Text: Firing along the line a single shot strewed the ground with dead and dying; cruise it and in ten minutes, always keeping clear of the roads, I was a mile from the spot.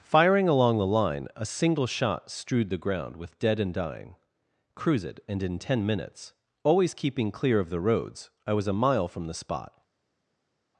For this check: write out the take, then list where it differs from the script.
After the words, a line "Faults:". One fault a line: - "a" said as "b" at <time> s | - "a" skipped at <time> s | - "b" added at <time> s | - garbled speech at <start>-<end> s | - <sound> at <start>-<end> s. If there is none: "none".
Firing along the line a single shot strewed the ground with dead and dying; cruise it and in ten minutes, always keeping clear of the roads, I was a mile from the spot.
Faults:
none